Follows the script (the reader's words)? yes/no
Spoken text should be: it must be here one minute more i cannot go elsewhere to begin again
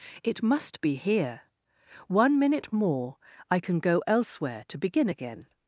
no